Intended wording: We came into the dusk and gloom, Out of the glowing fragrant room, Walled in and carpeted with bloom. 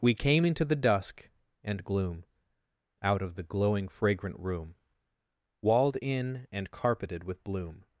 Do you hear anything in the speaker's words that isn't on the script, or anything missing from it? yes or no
no